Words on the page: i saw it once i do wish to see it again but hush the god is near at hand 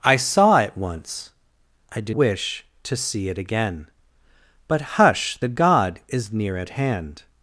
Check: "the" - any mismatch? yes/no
no